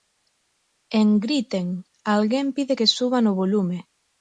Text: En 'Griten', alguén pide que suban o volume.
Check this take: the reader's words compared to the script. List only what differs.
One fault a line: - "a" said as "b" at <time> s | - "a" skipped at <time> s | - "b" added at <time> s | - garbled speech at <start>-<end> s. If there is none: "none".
none